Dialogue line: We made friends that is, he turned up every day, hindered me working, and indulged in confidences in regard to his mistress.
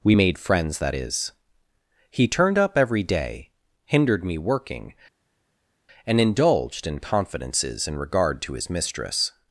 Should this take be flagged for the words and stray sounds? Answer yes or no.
no